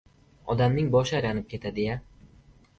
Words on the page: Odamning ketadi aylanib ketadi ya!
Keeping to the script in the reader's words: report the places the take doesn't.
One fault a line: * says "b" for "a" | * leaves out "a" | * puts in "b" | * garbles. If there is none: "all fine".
* says "boshi" for "ketadi"